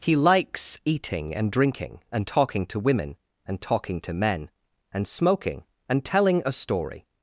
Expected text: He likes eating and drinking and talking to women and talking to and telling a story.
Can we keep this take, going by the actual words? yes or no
no